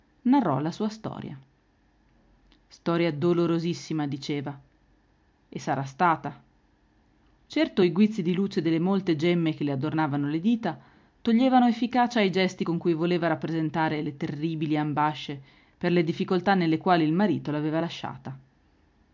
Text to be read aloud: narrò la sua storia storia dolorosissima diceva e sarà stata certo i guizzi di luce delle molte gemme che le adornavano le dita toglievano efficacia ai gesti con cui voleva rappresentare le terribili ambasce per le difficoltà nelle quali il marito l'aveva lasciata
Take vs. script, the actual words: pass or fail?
pass